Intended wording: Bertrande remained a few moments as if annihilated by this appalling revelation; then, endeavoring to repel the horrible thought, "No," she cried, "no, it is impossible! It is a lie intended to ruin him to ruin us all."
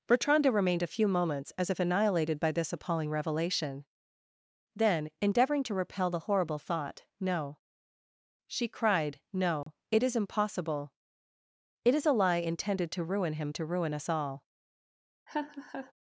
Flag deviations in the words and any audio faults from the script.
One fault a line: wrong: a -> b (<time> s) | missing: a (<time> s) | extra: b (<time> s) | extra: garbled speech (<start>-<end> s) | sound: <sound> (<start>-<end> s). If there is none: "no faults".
sound: dropout (9.6-9.7 s)
sound: laugh (15.3-15.9 s)